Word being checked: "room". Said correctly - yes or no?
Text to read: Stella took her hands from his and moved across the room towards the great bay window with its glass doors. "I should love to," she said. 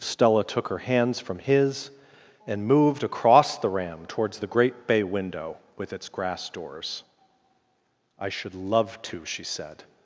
no